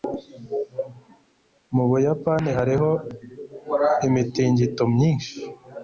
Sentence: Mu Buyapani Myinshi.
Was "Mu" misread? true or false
false